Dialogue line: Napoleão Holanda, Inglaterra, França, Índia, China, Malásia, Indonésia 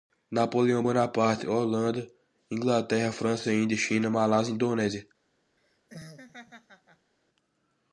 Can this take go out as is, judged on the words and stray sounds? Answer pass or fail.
fail